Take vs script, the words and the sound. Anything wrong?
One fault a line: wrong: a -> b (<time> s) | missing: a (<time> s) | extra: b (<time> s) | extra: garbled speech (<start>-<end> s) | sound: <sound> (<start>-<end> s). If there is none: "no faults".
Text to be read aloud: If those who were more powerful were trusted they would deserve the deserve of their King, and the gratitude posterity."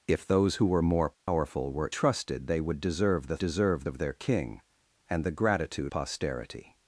sound: dropout (1.1-1.3 s)